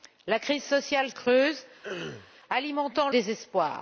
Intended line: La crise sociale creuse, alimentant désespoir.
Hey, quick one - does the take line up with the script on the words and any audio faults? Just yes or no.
no